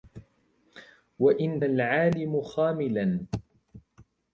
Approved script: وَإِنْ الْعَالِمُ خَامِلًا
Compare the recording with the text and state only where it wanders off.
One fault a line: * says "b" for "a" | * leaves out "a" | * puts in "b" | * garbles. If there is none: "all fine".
all fine